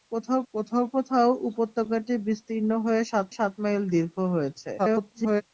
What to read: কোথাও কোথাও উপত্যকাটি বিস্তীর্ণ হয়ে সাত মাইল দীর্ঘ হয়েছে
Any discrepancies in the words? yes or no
yes